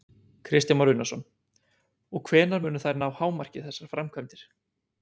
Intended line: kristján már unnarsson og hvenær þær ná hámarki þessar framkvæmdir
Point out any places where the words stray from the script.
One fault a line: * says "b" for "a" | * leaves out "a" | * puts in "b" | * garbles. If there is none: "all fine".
* puts in "munu"